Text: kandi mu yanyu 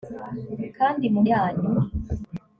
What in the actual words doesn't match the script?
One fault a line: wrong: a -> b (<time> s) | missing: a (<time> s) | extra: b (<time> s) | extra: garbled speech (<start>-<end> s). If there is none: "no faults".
no faults